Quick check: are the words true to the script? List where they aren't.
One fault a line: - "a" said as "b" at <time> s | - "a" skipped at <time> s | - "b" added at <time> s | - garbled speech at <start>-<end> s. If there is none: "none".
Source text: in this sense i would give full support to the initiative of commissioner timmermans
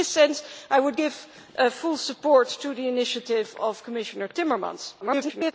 - garbled speech at 5.0-5.5 s